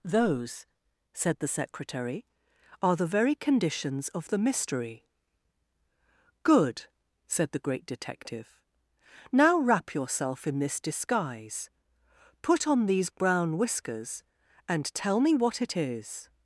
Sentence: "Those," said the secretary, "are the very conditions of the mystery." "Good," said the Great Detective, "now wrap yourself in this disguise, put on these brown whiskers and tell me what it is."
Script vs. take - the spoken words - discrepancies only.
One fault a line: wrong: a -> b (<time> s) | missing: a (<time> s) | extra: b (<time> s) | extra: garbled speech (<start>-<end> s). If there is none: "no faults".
no faults